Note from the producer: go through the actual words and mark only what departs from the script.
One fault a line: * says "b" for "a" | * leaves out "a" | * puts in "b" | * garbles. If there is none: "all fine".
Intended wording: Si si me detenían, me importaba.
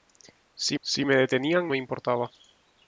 all fine